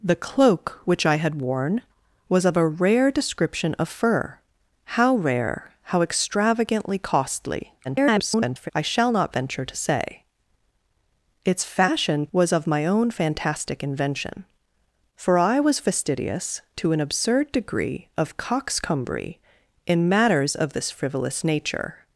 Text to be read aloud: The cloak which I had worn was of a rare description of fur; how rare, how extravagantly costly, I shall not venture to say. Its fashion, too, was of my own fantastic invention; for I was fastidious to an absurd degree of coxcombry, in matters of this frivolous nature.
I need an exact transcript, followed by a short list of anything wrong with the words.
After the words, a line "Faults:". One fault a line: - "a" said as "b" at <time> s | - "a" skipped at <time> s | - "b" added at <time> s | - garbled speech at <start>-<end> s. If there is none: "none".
The cloak which I had worn was of a rare description of fur; how rare, how extravagantly costly, [garbled] I shall not venture to say. Its fashion, was of my own fantastic invention; for I was fastidious to an absurd degree of coxcombry, in matters of this frivolous nature.
Faults:
- garbled speech at 7.8-8.7 s
- "too" skipped at 12.3 s